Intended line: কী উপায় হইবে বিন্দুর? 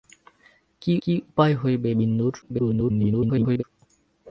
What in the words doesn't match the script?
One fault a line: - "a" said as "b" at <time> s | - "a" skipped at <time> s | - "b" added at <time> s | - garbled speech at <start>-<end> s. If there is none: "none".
- "কী" added at 1.0 s
- garbled speech at 2.4-3.6 s